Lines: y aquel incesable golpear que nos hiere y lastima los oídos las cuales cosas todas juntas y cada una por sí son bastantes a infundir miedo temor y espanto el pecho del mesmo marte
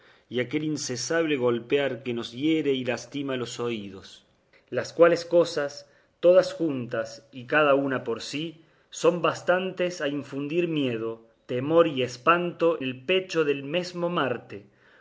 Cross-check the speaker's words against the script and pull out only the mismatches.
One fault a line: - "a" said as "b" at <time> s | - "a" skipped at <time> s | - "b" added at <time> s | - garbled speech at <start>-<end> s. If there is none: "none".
none